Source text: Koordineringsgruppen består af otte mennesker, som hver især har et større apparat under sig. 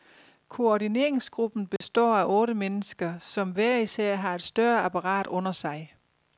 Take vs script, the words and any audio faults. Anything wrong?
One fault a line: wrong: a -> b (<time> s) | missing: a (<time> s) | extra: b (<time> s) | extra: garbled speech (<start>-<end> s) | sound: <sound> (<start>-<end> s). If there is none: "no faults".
sound: dropout (1.8-1.8 s)